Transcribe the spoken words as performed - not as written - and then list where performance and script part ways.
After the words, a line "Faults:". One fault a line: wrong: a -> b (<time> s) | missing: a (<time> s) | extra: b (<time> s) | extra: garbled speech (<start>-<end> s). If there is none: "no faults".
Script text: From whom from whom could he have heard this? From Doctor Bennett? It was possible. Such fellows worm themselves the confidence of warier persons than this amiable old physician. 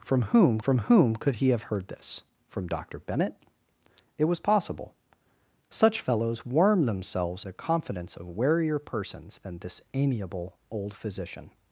From whom from whom could he have heard this? From Doctor Bennett? It was possible. Such fellows worm themselves the confidence of warier persons than this amiable old physician.
Faults:
no faults